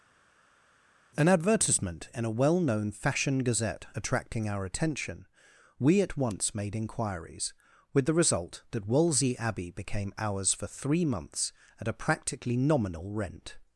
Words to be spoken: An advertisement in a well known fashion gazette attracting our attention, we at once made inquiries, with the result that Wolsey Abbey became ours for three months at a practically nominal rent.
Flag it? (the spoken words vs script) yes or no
no